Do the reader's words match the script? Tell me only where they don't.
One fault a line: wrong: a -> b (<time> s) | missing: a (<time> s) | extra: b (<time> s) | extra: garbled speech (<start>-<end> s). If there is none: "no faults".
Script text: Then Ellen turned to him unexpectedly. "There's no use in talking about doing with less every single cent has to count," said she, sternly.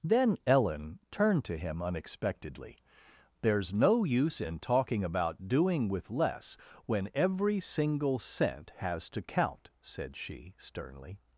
extra: when (6.8 s)